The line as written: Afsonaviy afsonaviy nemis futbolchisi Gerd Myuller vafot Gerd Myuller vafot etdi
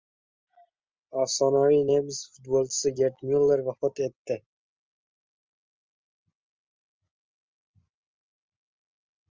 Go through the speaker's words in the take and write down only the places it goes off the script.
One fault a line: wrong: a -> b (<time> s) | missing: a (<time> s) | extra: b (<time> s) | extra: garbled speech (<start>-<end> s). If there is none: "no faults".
missing: afsonaviy (1.8 s)
missing: Gerd Myuller vafot (4.0 s)